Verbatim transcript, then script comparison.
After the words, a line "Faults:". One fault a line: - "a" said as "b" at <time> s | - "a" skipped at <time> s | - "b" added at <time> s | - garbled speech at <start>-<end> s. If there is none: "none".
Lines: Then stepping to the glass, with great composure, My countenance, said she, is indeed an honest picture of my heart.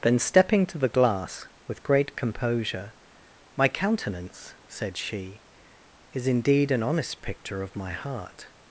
Then stepping to the glass, with great composure, My countenance, said she, is indeed an honest picture of my heart.
Faults:
none